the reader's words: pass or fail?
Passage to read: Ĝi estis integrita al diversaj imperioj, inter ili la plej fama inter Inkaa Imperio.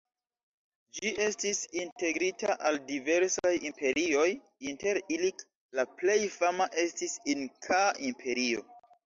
fail